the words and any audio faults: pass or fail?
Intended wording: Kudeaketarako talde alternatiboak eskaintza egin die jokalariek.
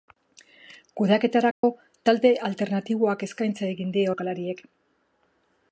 fail